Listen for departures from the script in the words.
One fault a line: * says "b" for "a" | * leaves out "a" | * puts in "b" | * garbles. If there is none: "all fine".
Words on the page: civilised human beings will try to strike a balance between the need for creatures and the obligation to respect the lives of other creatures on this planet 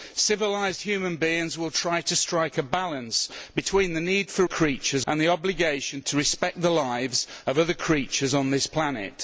all fine